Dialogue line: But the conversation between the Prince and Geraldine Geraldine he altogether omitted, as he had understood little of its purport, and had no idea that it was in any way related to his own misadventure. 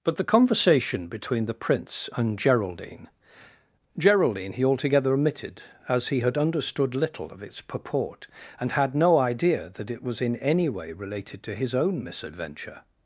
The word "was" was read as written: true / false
true